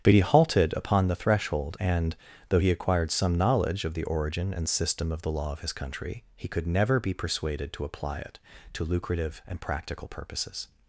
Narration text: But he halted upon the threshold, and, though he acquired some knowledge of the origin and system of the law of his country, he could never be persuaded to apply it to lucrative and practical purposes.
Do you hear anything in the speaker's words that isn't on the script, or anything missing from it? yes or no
no